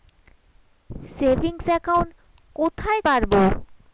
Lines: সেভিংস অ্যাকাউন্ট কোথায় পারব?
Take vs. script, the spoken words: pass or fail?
pass